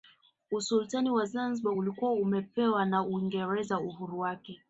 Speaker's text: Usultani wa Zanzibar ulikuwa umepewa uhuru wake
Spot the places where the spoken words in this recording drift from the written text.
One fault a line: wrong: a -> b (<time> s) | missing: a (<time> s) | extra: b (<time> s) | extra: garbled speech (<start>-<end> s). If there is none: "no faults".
extra: na Uingereza (2.9 s)